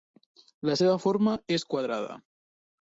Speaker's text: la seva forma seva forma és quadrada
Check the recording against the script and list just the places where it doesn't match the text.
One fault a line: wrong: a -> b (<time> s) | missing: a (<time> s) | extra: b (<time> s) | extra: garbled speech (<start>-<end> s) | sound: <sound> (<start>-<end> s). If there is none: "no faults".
missing: seva forma (1.4 s)